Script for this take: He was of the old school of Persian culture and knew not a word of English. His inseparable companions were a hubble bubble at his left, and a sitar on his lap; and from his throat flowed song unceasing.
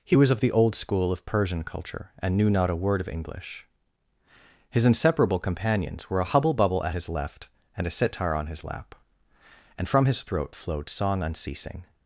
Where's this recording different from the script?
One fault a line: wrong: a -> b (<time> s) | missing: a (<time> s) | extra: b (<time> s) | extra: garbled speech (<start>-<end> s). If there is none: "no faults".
no faults